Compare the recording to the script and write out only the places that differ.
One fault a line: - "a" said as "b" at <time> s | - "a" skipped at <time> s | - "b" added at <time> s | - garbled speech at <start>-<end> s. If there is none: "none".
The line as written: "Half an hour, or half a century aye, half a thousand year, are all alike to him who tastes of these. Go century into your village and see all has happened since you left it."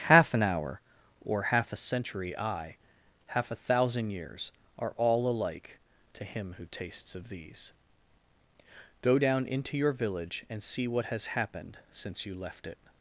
- "year" said as "years" at 4.1 s
- "century" said as "down" at 9.2 s
- "all" said as "what" at 10.9 s